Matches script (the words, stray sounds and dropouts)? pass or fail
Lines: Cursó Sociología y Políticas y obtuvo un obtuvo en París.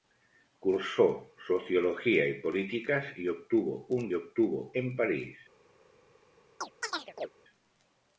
fail